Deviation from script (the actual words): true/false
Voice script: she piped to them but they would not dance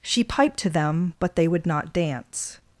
false